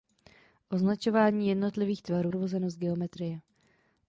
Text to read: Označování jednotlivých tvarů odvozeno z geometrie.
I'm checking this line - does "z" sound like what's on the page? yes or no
yes